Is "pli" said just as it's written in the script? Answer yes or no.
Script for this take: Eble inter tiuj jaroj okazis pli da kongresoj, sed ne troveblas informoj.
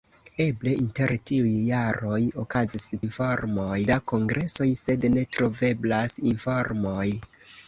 no